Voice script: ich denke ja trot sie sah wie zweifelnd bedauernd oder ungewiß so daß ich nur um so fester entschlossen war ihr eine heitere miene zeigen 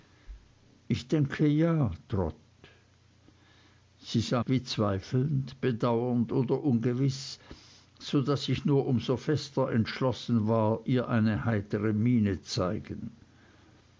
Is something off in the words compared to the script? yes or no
no